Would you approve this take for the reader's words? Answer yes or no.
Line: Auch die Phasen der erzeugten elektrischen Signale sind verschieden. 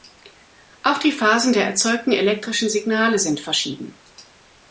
yes